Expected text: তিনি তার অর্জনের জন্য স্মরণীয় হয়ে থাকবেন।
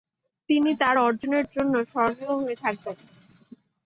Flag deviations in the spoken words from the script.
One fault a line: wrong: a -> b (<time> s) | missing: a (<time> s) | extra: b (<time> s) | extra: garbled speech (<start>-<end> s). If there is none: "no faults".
no faults